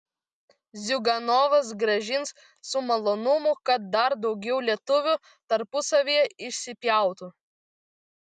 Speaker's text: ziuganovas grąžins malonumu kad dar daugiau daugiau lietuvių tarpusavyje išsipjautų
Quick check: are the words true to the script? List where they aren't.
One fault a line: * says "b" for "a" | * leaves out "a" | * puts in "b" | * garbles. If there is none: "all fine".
* puts in "su"
* leaves out "daugiau"